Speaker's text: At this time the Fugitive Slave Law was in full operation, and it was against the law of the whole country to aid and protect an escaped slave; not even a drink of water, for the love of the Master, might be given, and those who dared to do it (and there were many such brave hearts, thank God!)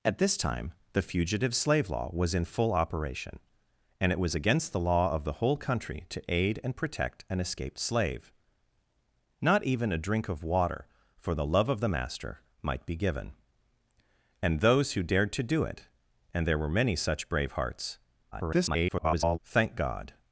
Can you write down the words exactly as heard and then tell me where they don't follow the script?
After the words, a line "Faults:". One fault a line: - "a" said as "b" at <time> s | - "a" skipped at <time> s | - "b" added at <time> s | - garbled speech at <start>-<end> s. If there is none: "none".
At this time the Fugitive Slave Law was in full operation, and it was against the law of the whole country to aid and protect an escaped slave; not even a drink of water, for the love of the Master, might be given, and those who dared to do it (and there were many such brave hearts, [garbled] thank God!)
Faults:
- garbled speech at 18.3-19.4 s